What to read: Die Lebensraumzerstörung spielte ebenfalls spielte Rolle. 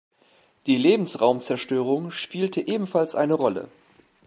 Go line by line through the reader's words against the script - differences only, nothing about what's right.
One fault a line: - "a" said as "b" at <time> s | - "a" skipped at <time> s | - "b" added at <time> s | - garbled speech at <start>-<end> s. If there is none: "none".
- "spielte" said as "eine" at 3.1 s